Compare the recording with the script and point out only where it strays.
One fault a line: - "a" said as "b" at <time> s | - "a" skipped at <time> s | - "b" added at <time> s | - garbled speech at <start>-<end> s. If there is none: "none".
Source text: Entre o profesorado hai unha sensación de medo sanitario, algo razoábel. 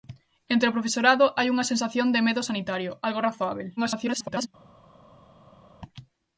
- garbled speech at 3.8-4.5 s